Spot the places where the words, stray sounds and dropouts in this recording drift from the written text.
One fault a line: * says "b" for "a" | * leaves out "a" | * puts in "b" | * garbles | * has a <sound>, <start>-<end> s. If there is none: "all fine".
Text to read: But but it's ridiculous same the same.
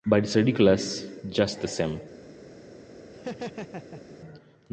* leaves out "but"
* says "just" for "same"
* has a laugh, 3.1-4.2 s